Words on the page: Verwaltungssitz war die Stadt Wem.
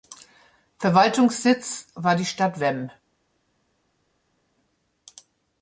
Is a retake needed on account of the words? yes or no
no